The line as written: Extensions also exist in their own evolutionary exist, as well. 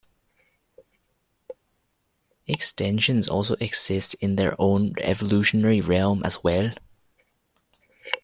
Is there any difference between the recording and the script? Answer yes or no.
yes